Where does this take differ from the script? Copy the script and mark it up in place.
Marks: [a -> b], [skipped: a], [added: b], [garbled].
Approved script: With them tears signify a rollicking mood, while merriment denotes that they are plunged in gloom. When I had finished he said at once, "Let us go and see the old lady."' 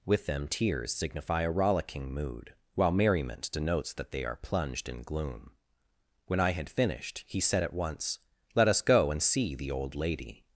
With them tears signify a rollicking mood, while merriment denotes that they are plunged in gloom. When I had finished he said at once, "Let us go and see the old lady."'